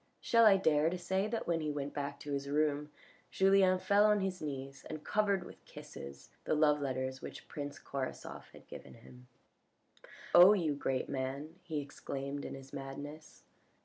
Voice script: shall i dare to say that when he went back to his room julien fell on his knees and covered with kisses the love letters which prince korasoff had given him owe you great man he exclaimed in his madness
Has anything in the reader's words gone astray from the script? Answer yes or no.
no